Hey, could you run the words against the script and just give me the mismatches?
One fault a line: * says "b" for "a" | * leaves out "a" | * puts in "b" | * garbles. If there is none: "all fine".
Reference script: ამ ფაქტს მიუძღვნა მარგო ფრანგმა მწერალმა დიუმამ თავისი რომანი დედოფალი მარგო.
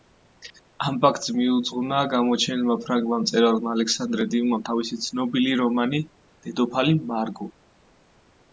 * says "გამოჩენილმა" for "მარგო"
* puts in "ალექსანდრე"
* puts in "ცნობილი"